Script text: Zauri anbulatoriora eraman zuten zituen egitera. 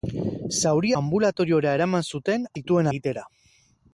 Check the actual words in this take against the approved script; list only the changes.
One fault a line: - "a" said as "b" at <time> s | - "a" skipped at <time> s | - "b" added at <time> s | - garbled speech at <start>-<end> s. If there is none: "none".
none